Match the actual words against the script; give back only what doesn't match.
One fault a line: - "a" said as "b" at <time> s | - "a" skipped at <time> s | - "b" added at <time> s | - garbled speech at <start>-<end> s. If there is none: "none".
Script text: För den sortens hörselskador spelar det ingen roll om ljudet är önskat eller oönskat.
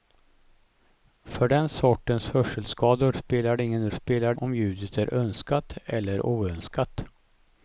- "roll" said as "spelar" at 3.9 s